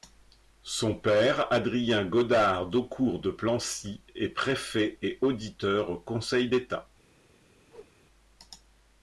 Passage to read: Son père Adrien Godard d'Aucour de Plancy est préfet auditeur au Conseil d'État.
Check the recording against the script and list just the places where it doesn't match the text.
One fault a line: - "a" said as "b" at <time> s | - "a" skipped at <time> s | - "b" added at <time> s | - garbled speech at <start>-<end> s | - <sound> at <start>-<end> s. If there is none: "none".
- "et" added at 5.0 s
- whoosh at 7.7-7.9 s